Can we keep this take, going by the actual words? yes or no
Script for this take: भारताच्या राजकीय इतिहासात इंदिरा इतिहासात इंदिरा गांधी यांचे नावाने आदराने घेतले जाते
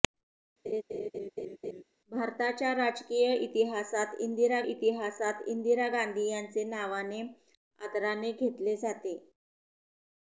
yes